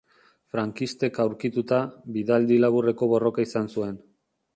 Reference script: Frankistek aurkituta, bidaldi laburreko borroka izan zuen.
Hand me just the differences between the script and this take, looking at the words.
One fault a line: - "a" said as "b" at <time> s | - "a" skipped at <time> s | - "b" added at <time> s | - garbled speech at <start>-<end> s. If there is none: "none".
none